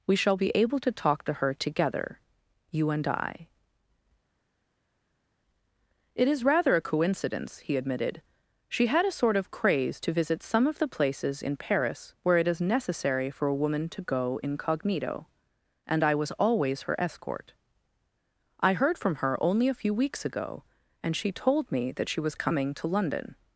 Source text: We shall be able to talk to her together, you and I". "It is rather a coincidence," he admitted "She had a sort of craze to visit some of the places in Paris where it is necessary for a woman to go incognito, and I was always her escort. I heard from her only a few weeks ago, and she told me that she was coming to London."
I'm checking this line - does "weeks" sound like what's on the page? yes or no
yes